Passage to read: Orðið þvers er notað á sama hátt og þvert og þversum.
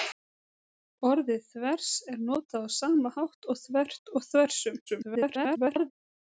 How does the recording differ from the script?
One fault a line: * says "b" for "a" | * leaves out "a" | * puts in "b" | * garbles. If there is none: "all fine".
* garbles